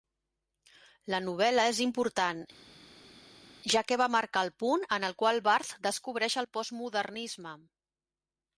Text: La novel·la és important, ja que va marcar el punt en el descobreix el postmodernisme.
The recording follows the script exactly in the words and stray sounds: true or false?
false